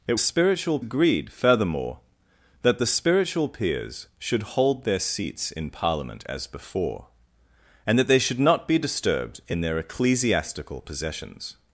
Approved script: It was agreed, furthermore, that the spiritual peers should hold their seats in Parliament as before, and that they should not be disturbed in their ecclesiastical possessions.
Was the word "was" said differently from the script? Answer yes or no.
yes